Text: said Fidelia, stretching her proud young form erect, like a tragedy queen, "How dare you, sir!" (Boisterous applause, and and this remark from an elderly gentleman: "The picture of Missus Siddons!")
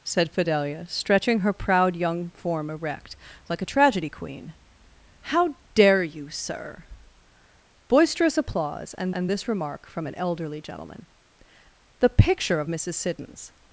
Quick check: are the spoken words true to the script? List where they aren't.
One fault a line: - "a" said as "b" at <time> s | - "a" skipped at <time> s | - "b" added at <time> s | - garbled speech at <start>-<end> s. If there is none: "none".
none